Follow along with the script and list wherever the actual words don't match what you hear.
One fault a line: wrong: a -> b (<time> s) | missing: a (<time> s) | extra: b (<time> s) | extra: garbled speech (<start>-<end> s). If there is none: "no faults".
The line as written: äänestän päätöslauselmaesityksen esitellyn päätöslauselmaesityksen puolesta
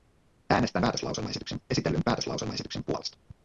no faults